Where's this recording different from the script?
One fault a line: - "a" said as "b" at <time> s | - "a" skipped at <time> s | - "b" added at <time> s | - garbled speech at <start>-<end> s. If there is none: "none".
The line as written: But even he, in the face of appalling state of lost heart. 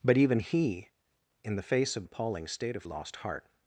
none